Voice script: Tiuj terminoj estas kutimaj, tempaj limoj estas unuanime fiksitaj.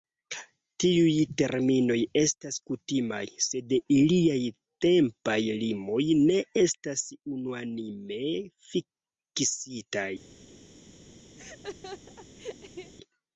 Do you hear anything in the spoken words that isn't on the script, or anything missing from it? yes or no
yes